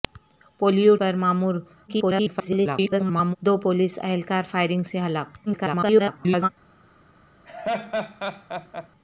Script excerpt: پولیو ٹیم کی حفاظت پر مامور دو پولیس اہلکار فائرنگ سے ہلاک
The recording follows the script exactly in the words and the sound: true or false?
false